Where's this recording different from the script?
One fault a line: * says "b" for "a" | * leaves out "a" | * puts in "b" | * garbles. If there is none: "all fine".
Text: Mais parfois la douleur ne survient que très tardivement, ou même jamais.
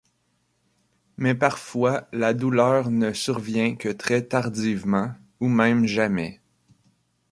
all fine